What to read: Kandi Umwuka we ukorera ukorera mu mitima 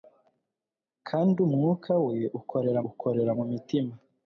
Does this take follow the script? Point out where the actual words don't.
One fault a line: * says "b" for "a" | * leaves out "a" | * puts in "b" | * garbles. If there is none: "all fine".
all fine